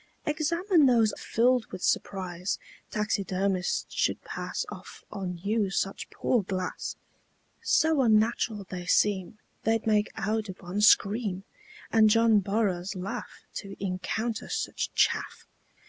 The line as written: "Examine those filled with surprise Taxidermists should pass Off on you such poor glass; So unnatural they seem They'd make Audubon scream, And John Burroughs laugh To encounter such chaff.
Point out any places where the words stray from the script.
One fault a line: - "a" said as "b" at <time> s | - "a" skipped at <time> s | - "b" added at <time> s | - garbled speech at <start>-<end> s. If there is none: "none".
none